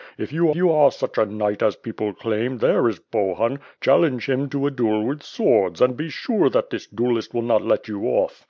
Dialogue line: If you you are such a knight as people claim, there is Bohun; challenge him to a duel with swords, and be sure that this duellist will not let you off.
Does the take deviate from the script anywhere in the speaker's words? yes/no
no